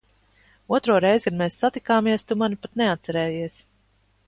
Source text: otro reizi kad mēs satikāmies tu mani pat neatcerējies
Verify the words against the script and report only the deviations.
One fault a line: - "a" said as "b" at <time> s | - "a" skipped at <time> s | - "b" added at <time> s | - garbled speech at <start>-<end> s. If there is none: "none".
none